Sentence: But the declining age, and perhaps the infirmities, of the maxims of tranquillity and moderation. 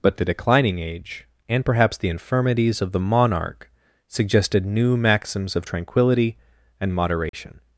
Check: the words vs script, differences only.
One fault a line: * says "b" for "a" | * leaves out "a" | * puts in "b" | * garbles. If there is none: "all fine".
* puts in "monarch suggested new"